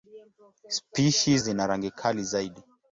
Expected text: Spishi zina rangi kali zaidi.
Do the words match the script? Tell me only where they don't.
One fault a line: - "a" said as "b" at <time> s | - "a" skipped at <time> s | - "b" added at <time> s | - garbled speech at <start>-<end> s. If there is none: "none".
none